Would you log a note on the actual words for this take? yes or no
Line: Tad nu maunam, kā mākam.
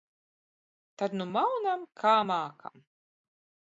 no